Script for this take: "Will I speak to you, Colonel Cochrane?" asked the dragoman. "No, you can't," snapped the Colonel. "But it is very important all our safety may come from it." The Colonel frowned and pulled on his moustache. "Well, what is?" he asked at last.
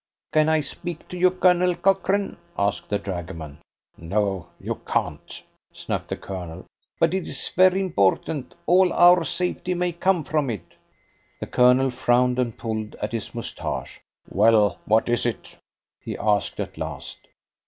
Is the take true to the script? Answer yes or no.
no